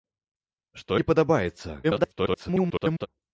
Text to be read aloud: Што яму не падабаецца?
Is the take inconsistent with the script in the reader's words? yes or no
yes